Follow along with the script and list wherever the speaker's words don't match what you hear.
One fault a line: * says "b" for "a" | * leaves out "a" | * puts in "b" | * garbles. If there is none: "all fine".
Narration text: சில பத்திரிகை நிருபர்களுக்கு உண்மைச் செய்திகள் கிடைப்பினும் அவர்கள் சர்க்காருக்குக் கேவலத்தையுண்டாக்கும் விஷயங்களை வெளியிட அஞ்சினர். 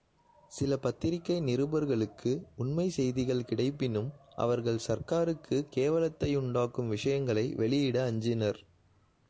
all fine